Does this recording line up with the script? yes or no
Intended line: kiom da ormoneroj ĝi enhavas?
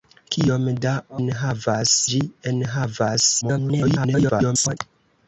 no